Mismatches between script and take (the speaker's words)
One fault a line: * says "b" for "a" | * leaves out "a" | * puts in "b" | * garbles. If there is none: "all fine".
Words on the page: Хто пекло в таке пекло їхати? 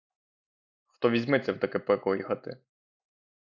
* says "візьметься" for "пекло"